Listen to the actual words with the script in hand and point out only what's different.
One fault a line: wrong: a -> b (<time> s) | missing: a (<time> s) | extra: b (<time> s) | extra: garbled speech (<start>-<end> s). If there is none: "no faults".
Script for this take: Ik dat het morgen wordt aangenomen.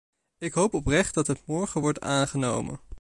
extra: hoop oprecht (0.5 s)